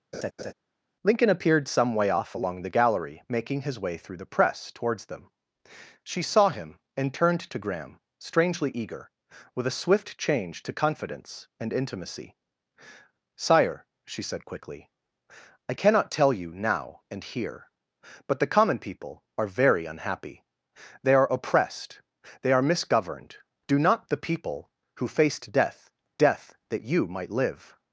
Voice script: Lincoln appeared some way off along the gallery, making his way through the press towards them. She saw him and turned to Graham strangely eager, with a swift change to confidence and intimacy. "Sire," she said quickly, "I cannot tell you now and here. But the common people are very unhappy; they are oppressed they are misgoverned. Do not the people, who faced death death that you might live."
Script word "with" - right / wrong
right